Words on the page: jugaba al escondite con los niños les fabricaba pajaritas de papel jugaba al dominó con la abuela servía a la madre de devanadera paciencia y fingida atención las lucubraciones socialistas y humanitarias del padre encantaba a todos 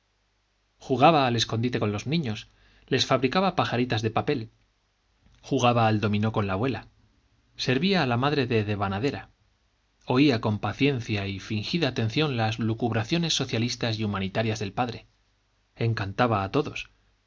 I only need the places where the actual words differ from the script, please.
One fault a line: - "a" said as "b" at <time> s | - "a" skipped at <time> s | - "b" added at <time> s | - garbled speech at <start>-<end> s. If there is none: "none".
- "oía con" added at 10.1 s